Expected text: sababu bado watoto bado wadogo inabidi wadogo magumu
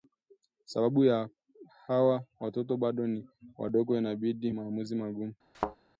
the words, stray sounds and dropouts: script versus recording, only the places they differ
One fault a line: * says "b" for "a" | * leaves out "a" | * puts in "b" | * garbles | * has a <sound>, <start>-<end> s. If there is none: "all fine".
* says "hawa" for "bado"
* puts in "ni"
* says "maamuzi" for "wadogo"
* has a thud, 5.5-5.8 s